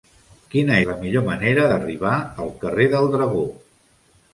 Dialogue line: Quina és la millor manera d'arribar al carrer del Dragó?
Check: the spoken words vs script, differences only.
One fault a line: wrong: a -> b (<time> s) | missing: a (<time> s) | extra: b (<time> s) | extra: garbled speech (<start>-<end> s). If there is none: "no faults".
missing: és (0.8 s)